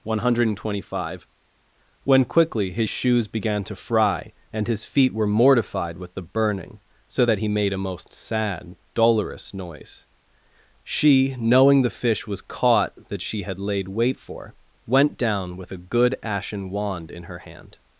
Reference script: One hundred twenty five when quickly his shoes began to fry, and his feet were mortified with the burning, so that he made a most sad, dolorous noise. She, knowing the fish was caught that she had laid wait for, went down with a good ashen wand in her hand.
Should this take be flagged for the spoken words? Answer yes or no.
no